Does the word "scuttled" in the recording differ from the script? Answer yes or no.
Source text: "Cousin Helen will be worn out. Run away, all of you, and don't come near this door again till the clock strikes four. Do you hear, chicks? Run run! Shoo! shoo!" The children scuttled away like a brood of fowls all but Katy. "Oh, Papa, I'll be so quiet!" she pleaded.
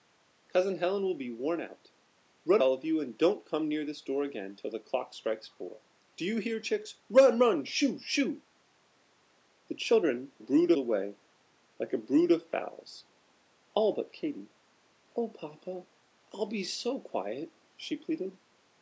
yes